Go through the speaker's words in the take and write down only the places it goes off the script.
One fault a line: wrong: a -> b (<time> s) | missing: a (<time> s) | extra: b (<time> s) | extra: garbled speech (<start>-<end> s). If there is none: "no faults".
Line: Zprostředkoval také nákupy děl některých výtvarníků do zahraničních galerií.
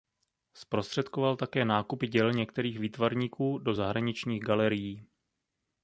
no faults